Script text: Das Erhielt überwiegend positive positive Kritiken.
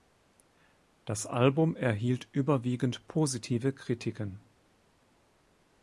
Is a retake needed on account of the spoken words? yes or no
yes